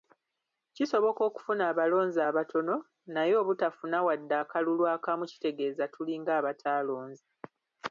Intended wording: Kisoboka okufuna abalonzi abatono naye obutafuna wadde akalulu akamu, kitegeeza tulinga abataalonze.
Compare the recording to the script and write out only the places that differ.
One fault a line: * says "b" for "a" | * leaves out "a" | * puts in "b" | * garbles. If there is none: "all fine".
all fine